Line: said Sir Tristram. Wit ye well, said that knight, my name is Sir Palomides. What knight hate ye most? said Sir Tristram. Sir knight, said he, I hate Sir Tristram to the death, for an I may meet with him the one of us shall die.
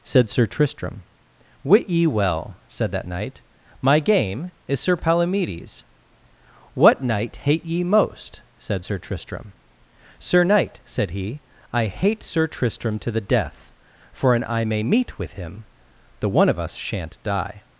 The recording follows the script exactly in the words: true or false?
false